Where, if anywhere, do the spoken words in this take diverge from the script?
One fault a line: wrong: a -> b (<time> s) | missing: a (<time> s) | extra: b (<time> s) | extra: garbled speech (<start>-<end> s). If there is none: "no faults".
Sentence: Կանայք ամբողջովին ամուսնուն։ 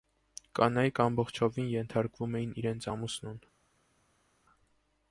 extra: ենթարկվում էին իրենց (1.7 s)